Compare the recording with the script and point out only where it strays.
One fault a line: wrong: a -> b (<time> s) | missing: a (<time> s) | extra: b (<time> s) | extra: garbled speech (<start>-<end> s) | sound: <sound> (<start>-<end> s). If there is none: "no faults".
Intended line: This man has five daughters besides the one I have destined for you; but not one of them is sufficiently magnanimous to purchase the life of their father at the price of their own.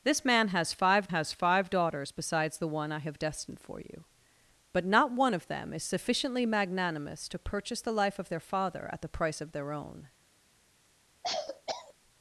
extra: has five (1.1 s)
sound: cough (11.2-11.9 s)